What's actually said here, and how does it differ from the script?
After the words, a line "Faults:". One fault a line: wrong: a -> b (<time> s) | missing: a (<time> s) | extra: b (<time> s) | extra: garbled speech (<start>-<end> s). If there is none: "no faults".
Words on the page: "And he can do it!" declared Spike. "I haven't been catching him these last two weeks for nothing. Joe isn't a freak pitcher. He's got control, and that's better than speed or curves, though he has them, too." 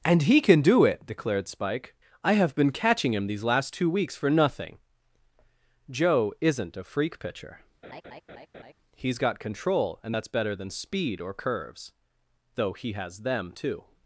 "And he can do it!" declared Spike. "I have been catching him these last two weeks for nothing. Joe isn't a freak pitcher. He's got control, and that's better than speed or curves, though he has them, too."
Faults:
wrong: haven't -> have (2.3 s)